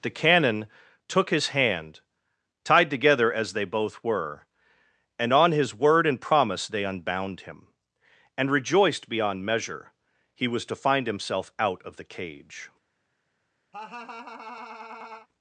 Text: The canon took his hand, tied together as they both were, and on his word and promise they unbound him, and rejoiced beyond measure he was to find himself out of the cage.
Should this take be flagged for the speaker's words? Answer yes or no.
no